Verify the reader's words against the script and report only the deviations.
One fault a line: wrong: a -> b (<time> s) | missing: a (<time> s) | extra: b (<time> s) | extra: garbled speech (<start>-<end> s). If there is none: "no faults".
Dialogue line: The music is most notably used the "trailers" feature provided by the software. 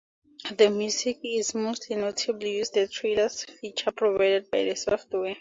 no faults